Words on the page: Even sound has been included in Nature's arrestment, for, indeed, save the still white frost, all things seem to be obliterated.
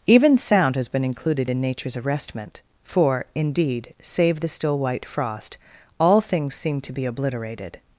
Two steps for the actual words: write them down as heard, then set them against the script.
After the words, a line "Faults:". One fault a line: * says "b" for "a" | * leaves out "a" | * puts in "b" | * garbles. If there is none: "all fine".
Even sound has been included in Nature's arrestment, for, indeed, save the still white frost, all things seem to be obliterated.
Faults:
all fine